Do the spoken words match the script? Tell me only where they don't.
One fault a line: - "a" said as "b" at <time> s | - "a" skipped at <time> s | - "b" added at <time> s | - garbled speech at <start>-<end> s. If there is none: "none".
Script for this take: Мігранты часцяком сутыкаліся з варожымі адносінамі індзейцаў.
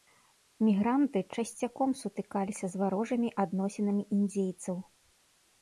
none